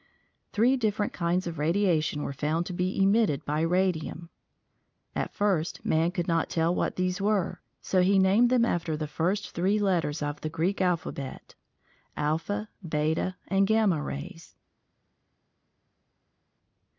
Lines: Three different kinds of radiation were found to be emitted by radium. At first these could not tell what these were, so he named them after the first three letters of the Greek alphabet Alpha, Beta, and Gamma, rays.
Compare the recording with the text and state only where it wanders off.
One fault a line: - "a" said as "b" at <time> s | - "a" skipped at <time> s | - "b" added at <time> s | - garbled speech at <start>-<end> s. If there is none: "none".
- "these" said as "man" at 5.8 s